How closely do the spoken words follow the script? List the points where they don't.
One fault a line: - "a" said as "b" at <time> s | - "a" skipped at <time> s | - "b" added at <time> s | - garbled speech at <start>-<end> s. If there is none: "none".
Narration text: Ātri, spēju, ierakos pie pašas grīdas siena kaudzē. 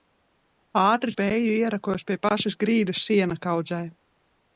none